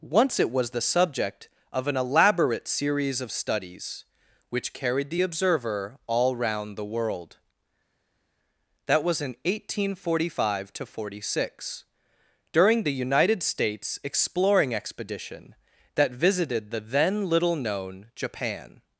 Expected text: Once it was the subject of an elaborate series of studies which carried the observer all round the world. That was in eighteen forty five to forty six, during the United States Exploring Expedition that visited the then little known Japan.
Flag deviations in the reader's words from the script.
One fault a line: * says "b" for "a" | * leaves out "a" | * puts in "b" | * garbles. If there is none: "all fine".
all fine